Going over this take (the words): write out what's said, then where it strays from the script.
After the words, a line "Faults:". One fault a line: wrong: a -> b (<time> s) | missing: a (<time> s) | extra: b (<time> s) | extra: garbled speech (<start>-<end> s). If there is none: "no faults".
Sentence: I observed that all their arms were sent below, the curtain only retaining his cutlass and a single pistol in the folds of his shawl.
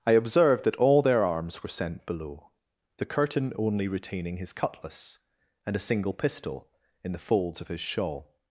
I observed that all their arms were sent below, the curtain only retaining his cutlass and a single pistol in the folds of his shawl.
Faults:
no faults